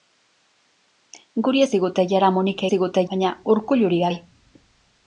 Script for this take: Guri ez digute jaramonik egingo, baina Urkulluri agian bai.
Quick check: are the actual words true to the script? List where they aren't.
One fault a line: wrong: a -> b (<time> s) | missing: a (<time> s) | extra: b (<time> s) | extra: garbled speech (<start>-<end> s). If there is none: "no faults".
wrong: egingo -> digute (2.7 s)
missing: agian (4.0 s)